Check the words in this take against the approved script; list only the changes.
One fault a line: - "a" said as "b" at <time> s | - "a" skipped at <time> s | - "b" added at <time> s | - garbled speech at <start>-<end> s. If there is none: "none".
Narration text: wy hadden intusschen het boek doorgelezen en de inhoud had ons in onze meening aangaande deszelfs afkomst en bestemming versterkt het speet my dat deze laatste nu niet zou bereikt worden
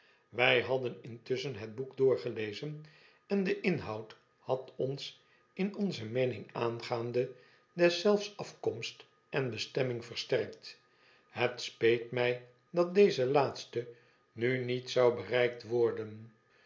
none